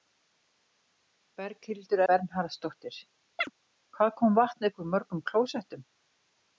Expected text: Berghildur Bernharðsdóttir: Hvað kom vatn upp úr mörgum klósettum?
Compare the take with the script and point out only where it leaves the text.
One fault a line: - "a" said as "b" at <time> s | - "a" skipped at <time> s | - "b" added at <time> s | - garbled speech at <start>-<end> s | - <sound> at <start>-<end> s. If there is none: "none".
- chirp at 3.4-3.5 s